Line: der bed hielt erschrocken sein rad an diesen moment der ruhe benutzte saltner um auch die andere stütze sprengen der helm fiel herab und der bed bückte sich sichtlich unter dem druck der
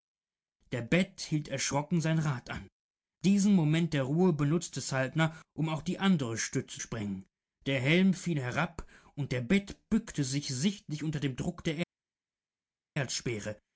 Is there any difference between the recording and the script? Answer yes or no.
no